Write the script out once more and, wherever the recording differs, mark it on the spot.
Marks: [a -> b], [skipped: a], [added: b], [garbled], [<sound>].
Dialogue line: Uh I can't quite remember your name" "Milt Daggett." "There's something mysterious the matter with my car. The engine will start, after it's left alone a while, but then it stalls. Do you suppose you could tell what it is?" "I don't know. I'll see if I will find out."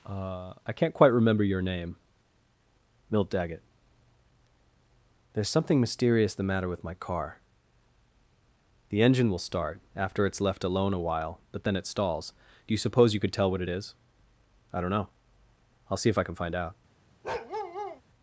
Uh I can't quite remember your name" "Milt Daggett." "There's something mysterious the matter with my car. The engine will start, after it's left alone a while, but then it stalls. Do you suppose you could tell what it is?" "I don't know. I'll see if I [will -> can] find out." [bark]